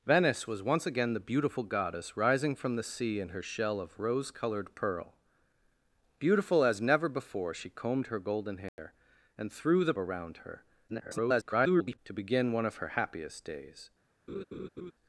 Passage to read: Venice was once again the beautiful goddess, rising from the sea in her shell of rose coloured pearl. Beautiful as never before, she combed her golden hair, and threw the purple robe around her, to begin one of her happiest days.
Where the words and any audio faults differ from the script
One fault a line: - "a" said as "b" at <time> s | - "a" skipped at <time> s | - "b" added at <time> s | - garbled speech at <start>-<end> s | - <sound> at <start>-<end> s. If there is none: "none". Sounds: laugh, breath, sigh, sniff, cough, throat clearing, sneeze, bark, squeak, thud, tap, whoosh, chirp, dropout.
- dropout at 8.7-8.8 s
- "purple robe" skipped at 9.9 s
- garbled speech at 10.9-12.0 s
- laugh at 14.3-14.9 s